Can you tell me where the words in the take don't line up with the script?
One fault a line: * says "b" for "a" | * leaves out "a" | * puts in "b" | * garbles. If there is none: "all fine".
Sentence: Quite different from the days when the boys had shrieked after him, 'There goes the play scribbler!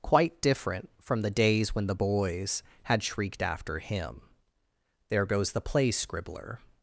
all fine